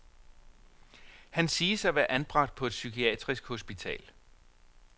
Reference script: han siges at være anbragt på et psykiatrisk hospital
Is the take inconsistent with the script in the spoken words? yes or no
no